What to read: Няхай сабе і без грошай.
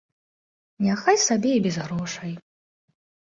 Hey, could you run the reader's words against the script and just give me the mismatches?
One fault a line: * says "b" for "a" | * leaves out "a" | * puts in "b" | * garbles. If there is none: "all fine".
all fine